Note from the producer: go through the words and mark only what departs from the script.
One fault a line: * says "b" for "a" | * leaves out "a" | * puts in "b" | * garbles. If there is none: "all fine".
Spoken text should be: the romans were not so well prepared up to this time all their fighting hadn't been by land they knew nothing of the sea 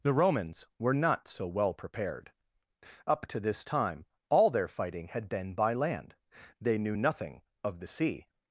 * says "had" for "hadn't"